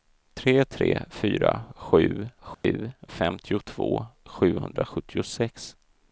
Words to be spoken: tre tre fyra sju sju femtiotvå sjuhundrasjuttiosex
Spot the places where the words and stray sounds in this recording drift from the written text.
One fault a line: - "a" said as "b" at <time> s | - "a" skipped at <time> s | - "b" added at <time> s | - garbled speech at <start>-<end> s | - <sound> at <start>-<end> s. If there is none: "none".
- dropout at 2.5-2.6 s